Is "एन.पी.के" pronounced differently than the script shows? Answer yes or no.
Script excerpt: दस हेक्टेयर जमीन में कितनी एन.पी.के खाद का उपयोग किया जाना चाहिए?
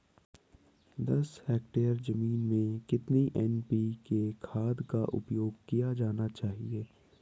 no